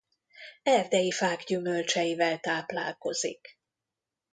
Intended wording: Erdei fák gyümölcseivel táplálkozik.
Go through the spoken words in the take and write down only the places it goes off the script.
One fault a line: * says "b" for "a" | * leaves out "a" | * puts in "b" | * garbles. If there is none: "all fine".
all fine